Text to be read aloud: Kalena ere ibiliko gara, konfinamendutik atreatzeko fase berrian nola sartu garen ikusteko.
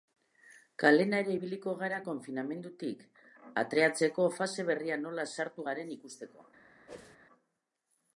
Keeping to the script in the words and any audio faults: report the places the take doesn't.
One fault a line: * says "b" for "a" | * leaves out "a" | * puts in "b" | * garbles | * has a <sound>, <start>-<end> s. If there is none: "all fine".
* has a whoosh, 6.9-7.2 s